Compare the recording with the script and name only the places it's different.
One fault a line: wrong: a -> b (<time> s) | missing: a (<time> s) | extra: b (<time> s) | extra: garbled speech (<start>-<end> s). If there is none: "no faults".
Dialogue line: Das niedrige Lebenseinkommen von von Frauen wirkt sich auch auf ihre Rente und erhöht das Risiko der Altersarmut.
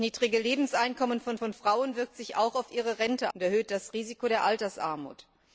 no faults